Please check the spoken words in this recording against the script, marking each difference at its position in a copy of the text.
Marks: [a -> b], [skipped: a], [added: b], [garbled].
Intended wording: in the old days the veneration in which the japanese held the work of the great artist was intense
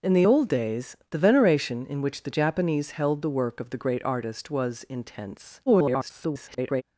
in the old days the veneration in which the japanese held the work of the great artist was intense [garbled]